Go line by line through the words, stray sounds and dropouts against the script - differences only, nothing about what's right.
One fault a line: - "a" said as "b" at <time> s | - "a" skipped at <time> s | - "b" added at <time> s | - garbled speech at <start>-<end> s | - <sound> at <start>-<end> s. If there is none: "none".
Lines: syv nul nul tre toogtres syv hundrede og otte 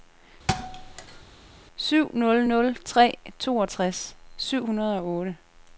- thud at 0.5-1.2 s